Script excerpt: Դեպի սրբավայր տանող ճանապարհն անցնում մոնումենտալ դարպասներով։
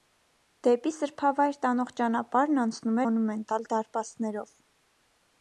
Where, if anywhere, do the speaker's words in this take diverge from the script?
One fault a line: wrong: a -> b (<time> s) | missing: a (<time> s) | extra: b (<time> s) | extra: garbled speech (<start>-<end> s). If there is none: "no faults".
no faults